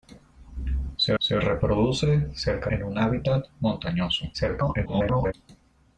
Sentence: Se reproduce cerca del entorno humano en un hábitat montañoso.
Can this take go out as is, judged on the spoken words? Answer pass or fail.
fail